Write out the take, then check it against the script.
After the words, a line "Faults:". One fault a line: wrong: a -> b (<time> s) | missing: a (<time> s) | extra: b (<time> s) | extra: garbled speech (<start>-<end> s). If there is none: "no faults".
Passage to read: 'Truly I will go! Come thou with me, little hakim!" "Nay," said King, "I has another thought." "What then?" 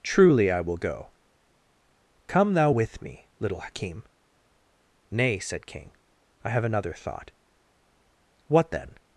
'Truly I will go! Come thou with me, little hakim!" "Nay," said King, "I have another thought." "What then?"
Faults:
wrong: has -> have (6.5 s)